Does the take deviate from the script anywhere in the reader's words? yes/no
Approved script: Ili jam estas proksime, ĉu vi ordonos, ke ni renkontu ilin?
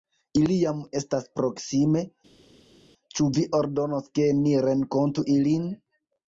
no